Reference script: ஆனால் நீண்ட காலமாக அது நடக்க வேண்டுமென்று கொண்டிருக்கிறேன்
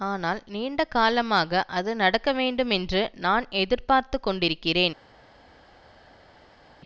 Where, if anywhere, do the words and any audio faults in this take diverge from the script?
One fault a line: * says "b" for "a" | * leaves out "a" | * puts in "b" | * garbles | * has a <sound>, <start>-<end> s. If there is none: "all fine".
* puts in "நான் எதிர்பார்த்து"